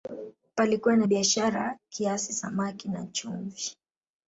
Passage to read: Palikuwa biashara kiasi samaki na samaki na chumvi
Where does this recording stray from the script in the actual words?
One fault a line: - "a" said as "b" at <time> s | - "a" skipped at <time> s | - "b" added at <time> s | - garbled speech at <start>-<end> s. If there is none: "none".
- "na" added at 0.9 s
- "samaki na" skipped at 3.1 s